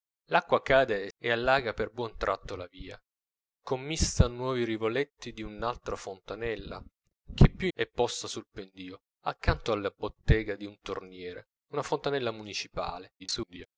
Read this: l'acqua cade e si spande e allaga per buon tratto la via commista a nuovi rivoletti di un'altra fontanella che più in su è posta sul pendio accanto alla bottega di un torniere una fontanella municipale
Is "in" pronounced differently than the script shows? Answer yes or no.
yes